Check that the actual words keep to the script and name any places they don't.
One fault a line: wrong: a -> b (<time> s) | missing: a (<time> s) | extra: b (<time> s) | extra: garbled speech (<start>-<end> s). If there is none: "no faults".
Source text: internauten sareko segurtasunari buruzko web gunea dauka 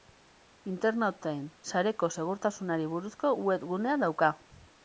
no faults